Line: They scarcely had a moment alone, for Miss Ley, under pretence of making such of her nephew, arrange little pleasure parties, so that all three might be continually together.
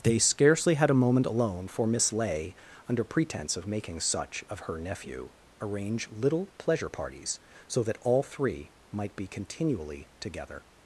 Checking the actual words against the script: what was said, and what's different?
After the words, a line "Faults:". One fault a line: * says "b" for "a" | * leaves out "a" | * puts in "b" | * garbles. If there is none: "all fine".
They scarcely had a moment alone, for Miss Ley, under pretence of making such of her nephew, arrange little pleasure parties, so that all three might be continually together.
Faults:
all fine